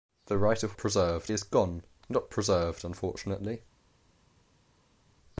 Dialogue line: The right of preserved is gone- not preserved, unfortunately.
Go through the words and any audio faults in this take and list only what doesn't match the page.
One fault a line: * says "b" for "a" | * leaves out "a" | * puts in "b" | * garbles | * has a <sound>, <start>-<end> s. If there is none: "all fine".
all fine